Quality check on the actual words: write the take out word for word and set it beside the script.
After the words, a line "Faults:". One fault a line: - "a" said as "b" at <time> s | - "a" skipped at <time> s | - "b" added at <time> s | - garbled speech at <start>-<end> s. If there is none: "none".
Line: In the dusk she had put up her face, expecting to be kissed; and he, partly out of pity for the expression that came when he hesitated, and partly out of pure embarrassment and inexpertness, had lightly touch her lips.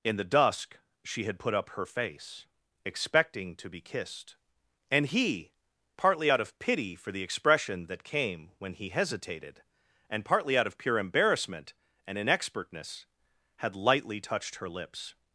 In the dusk she had put up her face, expecting to be kissed; and he, partly out of pity for the expression that came when he hesitated, and partly out of pure embarrassment and inexpertness, had lightly touched her lips.
Faults:
- "touch" said as "touched" at 14.2 s